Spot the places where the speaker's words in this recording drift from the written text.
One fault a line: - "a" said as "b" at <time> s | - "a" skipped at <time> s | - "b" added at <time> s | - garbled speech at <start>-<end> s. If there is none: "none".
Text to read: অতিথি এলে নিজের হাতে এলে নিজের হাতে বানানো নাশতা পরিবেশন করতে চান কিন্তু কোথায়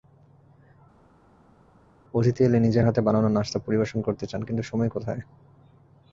- "এলে নিজের হাতে" skipped at 3.0 s
- "সময়" added at 4.6 s